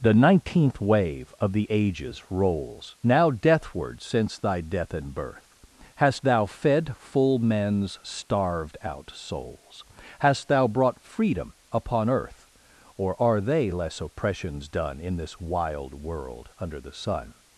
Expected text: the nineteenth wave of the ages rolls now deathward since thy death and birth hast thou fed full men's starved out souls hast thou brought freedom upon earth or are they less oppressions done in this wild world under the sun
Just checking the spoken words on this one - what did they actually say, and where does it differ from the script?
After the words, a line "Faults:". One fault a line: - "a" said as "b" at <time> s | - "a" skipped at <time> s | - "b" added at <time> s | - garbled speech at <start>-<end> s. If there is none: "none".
the nineteenth wave of the ages rolls now deathward since thy death and birth hast thou fed full men's starved out souls hast thou brought freedom upon earth or are they less oppressions done in this wild world under the sun
Faults:
none